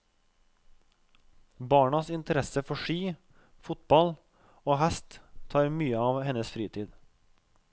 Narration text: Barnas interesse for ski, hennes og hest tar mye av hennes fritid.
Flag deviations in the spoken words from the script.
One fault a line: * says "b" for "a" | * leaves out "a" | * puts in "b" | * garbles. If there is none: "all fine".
* says "fotball" for "hennes"